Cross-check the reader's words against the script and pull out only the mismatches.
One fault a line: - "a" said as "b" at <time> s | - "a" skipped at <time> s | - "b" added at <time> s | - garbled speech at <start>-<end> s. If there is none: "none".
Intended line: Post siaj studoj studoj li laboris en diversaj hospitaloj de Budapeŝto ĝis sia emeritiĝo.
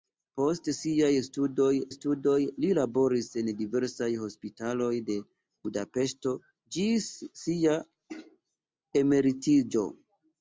none